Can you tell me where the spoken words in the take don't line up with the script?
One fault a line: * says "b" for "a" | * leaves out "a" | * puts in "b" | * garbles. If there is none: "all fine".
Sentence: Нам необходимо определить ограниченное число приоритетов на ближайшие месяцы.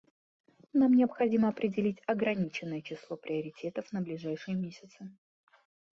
all fine